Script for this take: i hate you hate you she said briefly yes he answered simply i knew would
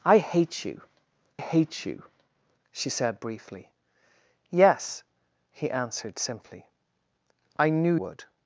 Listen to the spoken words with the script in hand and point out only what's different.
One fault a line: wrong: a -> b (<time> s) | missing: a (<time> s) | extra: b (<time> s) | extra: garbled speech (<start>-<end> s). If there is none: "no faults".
no faults